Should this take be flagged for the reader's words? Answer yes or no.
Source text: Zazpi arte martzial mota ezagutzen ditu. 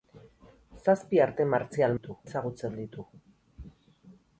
yes